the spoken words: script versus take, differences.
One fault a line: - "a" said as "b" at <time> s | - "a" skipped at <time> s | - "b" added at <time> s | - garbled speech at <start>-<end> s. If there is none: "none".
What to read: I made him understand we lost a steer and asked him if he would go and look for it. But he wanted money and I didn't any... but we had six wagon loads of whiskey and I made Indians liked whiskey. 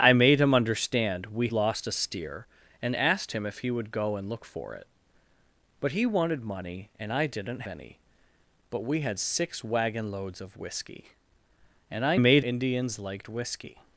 none